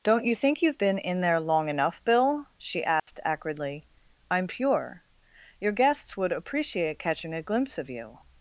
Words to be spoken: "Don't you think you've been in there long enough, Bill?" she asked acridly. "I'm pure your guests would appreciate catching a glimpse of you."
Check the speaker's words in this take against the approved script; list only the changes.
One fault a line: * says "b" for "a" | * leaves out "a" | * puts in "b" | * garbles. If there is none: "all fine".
all fine